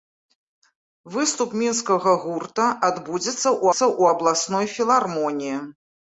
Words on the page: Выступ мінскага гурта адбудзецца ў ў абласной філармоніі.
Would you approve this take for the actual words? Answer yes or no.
yes